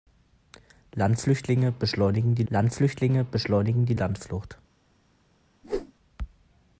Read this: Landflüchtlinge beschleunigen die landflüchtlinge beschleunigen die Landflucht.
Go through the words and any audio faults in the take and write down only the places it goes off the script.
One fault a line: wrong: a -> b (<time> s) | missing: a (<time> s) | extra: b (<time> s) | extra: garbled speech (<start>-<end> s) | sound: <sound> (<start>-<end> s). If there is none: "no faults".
sound: whoosh (5.6-5.9 s)